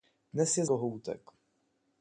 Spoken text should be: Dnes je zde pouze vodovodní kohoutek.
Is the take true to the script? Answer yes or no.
no